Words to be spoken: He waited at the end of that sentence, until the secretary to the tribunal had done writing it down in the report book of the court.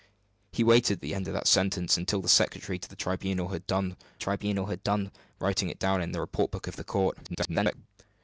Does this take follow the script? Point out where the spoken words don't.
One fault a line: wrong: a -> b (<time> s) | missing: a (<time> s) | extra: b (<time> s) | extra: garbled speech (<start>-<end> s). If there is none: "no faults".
extra: tribunal had done (4.2 s)
extra: garbled speech (7.2-7.7 s)